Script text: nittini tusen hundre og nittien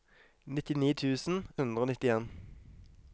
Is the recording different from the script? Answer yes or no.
no